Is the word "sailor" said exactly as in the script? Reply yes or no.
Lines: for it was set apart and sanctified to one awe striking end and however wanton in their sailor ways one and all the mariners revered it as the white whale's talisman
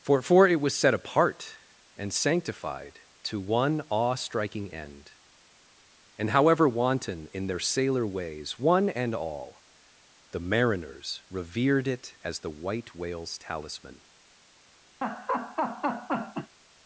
yes